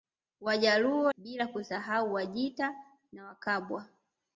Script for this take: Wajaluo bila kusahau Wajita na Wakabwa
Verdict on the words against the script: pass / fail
pass